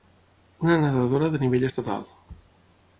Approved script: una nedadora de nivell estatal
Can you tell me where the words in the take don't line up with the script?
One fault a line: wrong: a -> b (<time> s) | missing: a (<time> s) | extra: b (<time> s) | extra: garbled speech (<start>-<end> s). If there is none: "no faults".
no faults